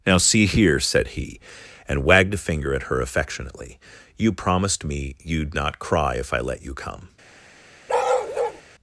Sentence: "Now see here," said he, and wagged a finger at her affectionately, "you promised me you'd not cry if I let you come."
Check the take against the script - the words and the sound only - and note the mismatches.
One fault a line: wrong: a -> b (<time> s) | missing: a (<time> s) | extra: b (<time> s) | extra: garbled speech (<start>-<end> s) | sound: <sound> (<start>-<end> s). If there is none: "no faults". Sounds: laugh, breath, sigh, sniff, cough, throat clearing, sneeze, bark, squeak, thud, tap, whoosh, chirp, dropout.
sound: bark (7.9-8.6 s)